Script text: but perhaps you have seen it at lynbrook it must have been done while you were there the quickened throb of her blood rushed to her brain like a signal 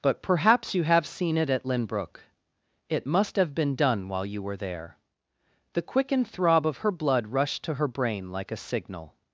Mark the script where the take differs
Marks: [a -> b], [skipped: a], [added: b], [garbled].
but perhaps you have seen it at lynbrook it must have been done while you were there the quickened throb of her blood rushed to her brain like a signal